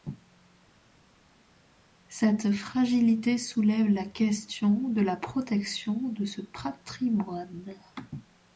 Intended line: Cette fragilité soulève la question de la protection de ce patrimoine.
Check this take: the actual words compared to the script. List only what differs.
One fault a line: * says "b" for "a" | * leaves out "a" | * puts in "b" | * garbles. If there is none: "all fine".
all fine